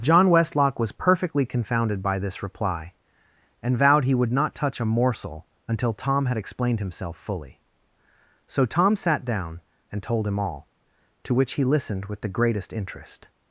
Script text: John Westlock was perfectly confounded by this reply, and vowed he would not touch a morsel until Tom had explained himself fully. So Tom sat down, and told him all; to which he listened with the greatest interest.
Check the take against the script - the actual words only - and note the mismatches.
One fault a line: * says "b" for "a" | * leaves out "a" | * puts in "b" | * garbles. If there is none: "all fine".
all fine